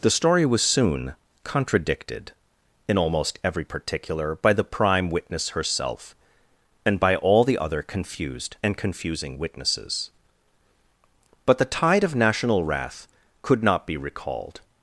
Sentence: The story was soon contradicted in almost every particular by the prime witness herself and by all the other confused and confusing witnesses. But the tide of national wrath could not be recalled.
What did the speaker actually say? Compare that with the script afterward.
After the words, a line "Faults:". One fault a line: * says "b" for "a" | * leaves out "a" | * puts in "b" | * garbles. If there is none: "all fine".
The story was soon contradicted in almost every particular by the prime witness herself and by all the other confused and confusing witnesses. But the tide of national wrath could not be recalled.
Faults:
all fine